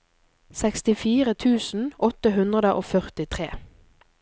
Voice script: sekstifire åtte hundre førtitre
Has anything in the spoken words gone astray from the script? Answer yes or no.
yes